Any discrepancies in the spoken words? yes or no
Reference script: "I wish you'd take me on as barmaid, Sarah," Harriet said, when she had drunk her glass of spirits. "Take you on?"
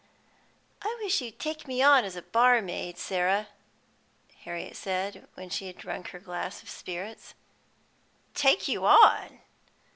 no